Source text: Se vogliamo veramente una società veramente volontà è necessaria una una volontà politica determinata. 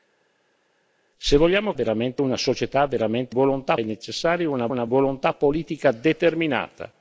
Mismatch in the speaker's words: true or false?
false